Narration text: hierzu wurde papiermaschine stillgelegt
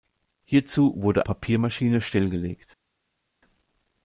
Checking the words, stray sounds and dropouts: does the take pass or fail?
pass